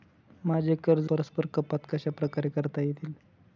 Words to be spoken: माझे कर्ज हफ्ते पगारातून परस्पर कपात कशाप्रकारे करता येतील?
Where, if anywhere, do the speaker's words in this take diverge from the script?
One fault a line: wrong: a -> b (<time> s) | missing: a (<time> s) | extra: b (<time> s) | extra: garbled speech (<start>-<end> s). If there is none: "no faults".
missing: हफ्ते पगारातून (1.1 s)